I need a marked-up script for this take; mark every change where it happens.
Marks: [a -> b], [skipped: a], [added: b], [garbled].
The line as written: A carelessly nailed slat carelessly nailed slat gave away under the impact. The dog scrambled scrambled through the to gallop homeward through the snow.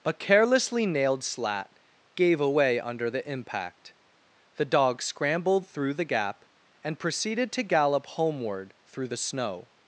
A carelessly nailed slat [skipped: carelessly nailed slat] gave away under the impact. The dog scrambled [skipped: scrambled] through the [added: gap and proceeded] to gallop homeward through the snow.